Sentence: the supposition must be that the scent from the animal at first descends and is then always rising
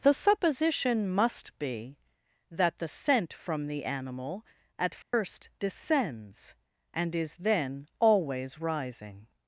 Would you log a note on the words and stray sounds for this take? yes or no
yes